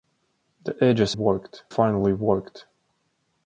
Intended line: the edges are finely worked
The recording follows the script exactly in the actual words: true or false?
false